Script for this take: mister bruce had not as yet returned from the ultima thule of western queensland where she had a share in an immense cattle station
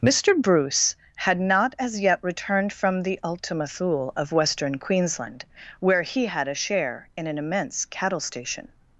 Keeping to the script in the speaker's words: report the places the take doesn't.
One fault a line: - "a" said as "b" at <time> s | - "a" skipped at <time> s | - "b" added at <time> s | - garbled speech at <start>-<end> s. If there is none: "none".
- "she" said as "he" at 6.0 s